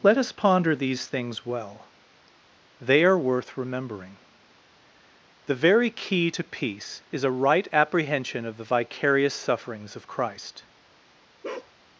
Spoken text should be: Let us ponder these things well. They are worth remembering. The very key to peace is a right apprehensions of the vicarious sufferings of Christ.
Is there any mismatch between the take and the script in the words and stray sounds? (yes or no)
yes